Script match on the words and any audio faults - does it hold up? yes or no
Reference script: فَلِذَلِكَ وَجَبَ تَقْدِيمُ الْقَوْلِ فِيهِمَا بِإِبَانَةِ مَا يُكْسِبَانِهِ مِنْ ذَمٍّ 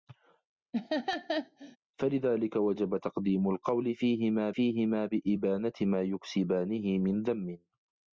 no